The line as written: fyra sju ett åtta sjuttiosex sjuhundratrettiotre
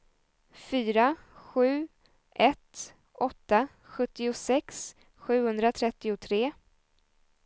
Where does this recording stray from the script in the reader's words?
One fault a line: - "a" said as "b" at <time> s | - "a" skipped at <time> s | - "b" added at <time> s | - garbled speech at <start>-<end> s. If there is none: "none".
none